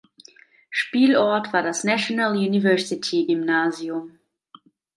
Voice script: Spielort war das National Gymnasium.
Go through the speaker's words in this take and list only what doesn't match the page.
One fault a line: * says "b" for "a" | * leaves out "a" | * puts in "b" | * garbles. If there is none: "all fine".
* puts in "University"